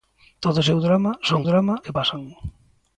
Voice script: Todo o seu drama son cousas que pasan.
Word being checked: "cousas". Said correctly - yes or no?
no